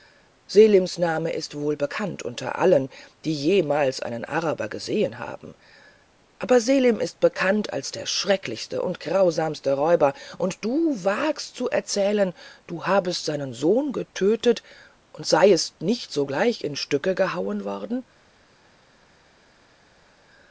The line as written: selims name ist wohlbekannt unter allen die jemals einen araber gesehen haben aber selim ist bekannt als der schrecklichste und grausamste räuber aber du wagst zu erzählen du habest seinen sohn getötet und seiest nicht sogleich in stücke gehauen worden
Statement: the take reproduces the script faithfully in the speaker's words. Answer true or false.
false